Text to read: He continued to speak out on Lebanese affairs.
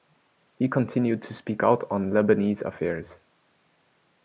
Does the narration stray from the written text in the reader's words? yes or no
no